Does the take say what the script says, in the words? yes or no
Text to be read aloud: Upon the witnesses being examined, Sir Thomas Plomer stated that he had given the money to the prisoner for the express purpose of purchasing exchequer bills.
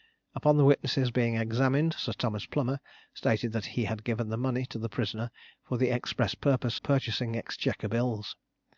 no